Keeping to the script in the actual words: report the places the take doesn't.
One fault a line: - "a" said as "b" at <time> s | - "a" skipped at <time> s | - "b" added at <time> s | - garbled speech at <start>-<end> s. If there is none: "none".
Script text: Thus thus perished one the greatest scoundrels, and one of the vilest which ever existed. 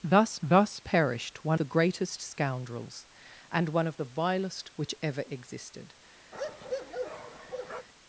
none